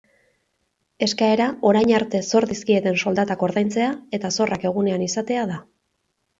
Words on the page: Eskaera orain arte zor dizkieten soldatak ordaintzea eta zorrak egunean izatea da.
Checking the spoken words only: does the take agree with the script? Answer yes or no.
yes